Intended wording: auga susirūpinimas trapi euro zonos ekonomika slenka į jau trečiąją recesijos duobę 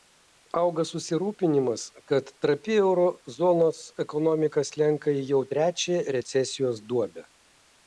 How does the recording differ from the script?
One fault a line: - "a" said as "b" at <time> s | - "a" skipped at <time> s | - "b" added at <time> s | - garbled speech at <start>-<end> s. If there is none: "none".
- "kad" added at 2.1 s